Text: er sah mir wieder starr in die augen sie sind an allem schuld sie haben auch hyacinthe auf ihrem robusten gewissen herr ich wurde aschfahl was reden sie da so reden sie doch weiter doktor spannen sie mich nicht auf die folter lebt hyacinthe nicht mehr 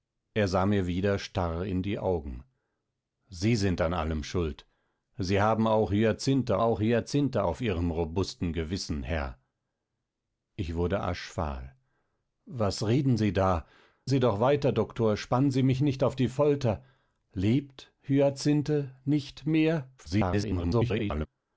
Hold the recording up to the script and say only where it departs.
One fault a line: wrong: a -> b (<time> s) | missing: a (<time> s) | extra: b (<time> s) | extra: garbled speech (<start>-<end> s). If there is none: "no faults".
extra: auch hyacinthe (6.6 s)
missing: so reden (13.7 s)
extra: garbled speech (20.0-21.3 s)